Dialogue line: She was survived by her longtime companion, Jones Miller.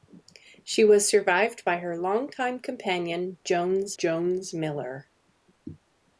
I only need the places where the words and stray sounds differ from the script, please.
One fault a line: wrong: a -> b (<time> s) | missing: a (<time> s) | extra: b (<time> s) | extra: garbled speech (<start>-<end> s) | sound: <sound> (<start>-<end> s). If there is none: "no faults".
extra: Jones (4.0 s)